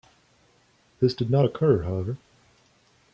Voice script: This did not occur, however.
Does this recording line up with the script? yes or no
yes